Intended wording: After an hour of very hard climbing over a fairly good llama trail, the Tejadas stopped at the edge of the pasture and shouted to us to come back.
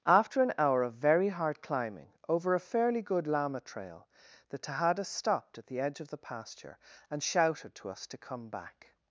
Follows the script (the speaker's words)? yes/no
yes